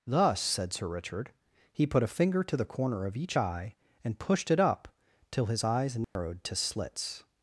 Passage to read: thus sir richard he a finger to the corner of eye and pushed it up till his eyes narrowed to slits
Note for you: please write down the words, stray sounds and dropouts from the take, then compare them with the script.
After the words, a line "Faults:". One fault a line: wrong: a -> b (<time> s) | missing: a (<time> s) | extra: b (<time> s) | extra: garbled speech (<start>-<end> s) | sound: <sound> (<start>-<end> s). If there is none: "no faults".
thus said sir richard he put a finger to the corner of each eye and pushed it up till his eyes narrowed to slits
Faults:
extra: said (0.4 s)
extra: put (1.9 s)
extra: each (3.1 s)
sound: dropout (6.0-6.2 s)